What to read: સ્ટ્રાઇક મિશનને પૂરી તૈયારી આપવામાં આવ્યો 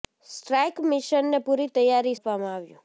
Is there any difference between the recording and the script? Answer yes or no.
no